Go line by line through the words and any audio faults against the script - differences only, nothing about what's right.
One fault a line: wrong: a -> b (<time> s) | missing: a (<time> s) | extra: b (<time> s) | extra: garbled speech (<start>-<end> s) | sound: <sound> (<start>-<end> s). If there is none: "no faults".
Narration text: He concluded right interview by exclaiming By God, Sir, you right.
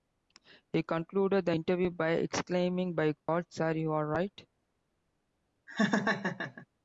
wrong: right -> the (1.4 s)
sound: dropout (3.2-3.3 s)
extra: are (3.9 s)
sound: laugh (5.7-6.7 s)